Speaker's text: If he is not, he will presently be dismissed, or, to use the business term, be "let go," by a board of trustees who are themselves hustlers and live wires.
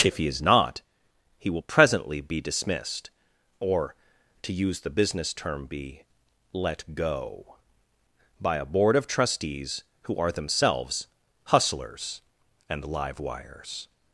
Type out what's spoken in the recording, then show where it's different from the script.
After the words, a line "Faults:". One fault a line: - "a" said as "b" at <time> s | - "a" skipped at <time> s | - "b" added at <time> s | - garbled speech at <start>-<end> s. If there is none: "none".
If he is not, he will presently be dismissed, or, to use the business term, be "let go," by a board of trustees who are themselves hustlers and live wires.
Faults:
none